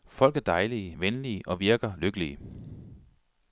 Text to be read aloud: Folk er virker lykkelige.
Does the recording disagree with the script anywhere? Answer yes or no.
yes